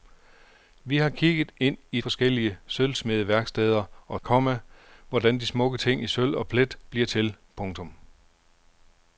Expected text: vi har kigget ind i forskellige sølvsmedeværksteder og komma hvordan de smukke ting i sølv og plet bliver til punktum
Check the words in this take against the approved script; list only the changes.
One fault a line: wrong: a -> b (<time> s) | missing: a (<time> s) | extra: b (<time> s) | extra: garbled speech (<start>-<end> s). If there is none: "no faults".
no faults